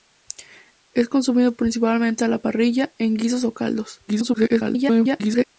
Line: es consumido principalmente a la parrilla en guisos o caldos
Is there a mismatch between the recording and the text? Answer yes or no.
yes